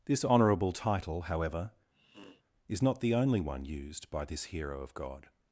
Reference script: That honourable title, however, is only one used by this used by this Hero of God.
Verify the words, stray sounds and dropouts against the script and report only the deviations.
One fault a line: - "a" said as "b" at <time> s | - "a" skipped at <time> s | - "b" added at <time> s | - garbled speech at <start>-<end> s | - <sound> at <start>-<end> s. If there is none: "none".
- "That" said as "This" at 0.1 s
- sniff at 1.9-2.4 s
- "not the" added at 2.8 s
- "used by this" skipped at 4.5 s